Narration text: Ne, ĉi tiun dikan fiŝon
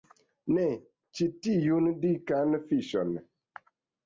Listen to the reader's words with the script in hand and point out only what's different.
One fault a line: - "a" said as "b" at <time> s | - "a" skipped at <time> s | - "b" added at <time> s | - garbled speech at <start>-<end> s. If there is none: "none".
none